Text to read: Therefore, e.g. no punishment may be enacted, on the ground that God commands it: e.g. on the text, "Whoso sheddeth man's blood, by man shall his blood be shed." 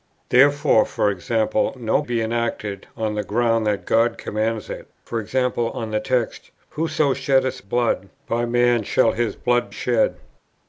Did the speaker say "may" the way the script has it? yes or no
no